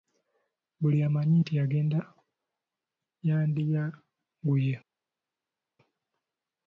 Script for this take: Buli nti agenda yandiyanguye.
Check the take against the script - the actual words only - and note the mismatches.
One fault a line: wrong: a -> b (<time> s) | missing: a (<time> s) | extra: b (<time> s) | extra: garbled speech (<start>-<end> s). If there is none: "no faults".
extra: amanyi (1.1 s)